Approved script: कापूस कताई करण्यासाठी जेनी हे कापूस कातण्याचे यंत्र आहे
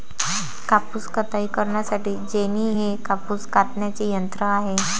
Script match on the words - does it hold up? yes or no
yes